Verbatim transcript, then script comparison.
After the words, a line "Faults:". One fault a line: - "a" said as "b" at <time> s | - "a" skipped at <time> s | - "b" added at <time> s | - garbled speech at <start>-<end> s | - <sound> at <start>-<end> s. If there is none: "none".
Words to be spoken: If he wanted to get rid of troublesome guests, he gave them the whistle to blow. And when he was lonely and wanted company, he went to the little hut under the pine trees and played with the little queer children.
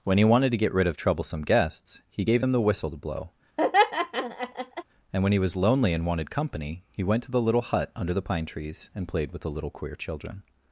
When he wanted to get rid of troublesome guests, he gave them the whistle to blow. And when he was lonely and wanted company, he went to the little hut under the pine trees and played with the little queer children.
Faults:
- "If" said as "When" at 0.0 s
- laugh at 3.6-4.8 s